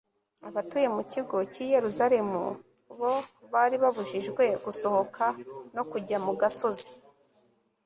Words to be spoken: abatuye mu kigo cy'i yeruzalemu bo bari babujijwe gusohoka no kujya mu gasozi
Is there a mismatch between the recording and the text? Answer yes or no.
no